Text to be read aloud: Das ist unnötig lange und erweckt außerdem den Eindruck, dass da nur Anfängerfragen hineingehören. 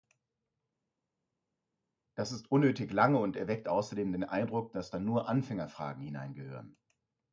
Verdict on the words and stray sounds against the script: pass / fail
pass